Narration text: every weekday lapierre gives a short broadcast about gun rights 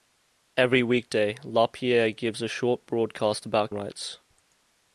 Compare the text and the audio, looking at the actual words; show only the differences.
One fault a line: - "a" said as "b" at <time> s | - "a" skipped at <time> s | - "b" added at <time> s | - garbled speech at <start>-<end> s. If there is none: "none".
- "gun" skipped at 3.7 s